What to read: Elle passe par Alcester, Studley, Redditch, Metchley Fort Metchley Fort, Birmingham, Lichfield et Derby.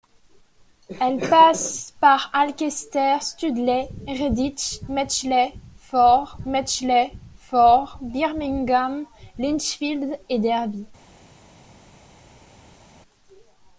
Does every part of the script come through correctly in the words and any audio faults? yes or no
yes